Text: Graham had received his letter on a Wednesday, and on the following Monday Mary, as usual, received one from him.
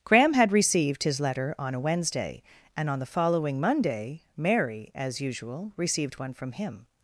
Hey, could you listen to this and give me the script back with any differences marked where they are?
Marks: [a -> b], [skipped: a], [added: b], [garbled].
Graham had received his letter on a Wednesday, and on the following Monday Mary, as usual, received one from him.